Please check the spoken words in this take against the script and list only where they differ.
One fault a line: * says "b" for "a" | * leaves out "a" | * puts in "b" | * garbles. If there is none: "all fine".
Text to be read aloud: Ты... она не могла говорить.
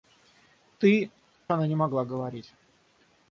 all fine